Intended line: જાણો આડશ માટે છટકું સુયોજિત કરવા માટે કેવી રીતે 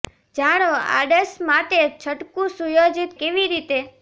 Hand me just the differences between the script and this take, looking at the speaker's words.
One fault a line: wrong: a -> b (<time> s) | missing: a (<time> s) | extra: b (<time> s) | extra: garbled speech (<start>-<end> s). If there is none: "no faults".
missing: કરવા માટે (3.1 s)